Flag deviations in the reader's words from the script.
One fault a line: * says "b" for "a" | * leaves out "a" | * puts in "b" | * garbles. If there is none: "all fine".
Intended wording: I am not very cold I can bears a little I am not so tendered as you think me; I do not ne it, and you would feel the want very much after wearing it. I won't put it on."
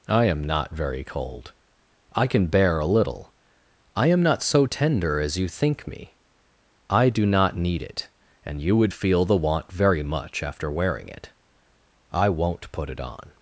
* says "bear" for "bears"
* says "tender" for "tendered"
* says "need" for "ne"